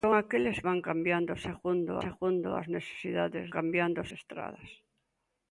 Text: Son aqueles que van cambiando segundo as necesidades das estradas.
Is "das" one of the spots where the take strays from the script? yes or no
yes